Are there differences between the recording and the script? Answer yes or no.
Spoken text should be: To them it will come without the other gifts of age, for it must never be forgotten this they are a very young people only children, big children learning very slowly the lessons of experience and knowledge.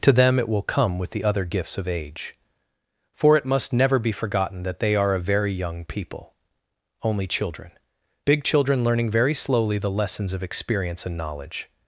yes